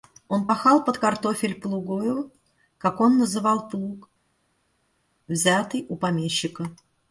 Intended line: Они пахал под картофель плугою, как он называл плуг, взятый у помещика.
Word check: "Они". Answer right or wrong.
wrong